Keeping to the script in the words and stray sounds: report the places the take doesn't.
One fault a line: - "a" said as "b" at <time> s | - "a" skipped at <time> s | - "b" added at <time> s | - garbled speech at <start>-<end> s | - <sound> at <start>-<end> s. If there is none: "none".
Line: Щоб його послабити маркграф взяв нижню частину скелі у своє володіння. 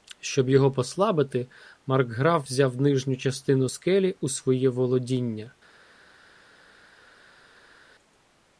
none